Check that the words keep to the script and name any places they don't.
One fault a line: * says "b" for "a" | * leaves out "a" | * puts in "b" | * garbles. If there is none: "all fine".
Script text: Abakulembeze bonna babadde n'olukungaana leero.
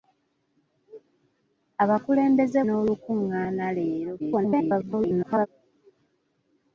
* leaves out "bonna babadde"
* garbles